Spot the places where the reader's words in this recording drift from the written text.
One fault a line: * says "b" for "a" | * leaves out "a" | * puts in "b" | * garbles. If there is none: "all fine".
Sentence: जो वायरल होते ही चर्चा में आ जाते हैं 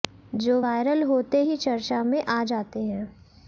all fine